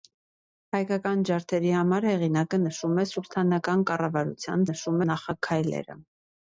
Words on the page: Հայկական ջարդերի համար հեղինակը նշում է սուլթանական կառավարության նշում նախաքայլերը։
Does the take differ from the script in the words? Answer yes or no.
no